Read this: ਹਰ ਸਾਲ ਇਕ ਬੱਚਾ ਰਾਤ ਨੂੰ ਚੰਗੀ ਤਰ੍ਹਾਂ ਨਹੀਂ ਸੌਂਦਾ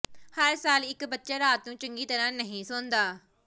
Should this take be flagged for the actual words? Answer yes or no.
no